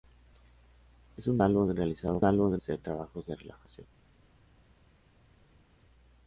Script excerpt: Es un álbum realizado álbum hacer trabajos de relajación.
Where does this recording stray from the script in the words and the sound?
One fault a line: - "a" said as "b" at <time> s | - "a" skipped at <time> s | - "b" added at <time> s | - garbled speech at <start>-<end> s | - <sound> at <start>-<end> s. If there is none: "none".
none